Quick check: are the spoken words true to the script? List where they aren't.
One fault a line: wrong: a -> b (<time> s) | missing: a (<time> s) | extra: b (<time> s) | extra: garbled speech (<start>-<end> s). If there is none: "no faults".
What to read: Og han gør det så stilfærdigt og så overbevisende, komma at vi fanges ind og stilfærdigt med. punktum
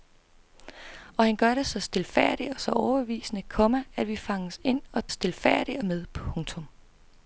no faults